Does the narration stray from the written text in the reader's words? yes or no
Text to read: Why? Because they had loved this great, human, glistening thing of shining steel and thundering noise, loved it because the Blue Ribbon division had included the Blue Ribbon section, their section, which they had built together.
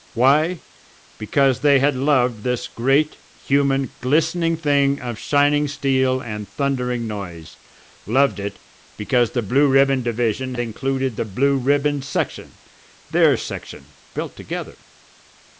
yes